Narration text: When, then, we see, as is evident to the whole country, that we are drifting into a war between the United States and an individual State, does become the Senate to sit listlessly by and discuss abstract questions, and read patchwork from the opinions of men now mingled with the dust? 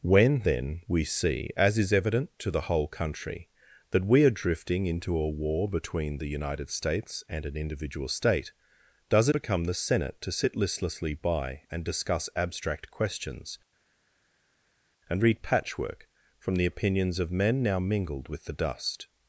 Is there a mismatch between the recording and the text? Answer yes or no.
no